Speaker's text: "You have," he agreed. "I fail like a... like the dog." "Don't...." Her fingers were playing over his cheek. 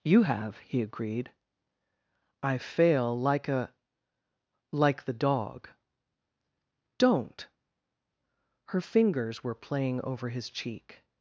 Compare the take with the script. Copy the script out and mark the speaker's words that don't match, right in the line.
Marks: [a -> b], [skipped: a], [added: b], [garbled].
"You have," he agreed. "I fail like a... like the dog." "Don't...." Her fingers were playing over his cheek.